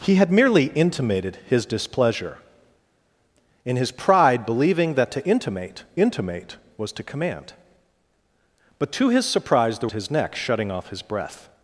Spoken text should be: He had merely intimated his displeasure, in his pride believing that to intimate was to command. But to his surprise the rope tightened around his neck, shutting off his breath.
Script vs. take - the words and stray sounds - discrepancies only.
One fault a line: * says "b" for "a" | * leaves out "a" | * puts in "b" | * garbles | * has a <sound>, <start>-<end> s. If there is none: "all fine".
* puts in "intimate"
* leaves out "rope tightened around"